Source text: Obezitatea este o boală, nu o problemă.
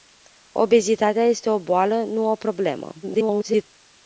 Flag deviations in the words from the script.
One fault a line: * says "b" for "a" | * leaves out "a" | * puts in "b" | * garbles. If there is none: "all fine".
* garbles